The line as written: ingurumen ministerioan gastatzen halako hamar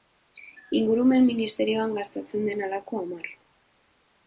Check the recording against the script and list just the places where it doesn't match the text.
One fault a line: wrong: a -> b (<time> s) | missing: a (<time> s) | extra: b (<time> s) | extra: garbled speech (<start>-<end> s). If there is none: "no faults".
extra: den (2.5 s)